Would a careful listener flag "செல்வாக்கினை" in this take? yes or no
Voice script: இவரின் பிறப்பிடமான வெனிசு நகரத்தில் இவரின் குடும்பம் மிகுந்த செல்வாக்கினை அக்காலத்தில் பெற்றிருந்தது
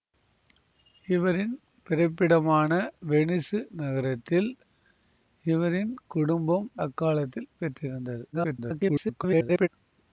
yes